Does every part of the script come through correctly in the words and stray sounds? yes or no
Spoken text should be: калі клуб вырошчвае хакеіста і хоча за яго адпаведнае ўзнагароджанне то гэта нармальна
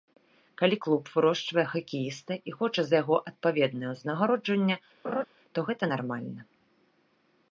no